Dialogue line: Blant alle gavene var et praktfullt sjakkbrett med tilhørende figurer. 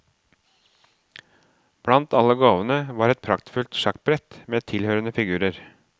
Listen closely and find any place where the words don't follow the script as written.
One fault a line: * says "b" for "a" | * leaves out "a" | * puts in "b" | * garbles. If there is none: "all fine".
all fine